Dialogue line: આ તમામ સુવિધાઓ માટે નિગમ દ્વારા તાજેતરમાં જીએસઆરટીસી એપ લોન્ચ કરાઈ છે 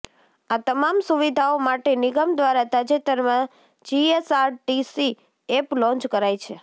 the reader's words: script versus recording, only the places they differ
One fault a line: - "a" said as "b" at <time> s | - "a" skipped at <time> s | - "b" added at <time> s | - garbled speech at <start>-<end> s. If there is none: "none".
none